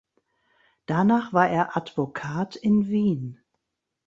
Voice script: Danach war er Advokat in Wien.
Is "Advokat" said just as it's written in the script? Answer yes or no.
yes